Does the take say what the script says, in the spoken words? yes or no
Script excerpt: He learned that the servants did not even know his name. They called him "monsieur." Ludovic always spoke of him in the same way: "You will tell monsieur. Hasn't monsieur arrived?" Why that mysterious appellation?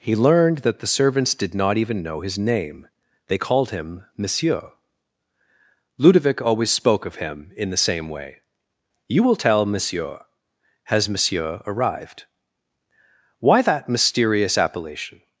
no